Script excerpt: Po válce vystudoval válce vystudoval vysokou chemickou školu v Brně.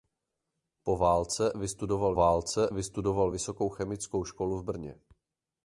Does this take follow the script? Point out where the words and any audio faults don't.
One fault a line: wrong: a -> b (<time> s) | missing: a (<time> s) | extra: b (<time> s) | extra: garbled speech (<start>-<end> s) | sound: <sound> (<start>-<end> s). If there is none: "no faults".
no faults